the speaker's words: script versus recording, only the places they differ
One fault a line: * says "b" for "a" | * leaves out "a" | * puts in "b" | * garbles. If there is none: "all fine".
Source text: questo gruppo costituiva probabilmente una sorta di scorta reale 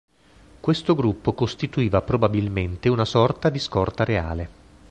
all fine